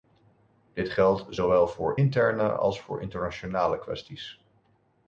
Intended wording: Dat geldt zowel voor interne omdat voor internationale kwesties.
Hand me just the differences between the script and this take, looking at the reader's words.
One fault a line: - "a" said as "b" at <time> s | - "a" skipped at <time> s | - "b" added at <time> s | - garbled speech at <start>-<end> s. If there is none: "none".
- "Dat" said as "Dit" at 0.7 s
- "omdat" said as "als" at 2.5 s